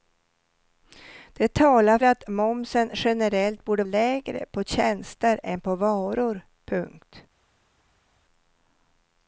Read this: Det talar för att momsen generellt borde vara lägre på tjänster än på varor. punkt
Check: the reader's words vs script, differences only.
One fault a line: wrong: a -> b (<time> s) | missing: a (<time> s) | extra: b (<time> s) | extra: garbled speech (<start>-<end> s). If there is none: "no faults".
missing: för (2.0 s)
missing: vara (3.8 s)